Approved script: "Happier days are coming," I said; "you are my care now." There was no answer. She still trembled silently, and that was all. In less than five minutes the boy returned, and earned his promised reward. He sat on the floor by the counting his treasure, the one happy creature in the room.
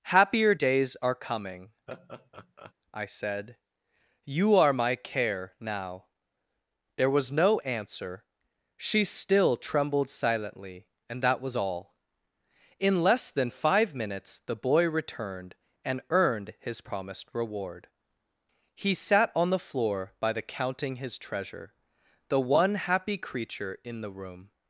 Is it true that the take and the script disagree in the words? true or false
false